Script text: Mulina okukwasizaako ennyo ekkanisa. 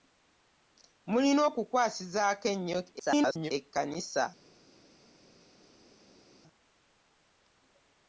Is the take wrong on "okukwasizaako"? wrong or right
right